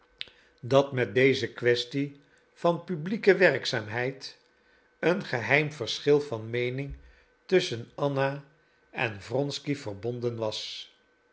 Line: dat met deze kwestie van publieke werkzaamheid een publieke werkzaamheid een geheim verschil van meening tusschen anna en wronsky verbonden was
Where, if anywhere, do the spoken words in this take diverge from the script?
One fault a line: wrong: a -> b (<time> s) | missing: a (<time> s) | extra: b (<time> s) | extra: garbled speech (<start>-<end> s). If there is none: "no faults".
missing: publieke werkzaamheid een (5.2 s)